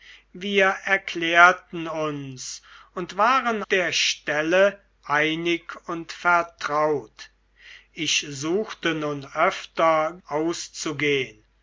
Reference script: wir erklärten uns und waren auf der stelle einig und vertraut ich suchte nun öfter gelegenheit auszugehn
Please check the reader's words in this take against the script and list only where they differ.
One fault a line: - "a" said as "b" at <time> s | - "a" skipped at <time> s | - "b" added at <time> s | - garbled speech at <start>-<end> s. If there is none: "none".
- "auf" skipped at 3.6 s
- "gelegenheit" skipped at 10.2 s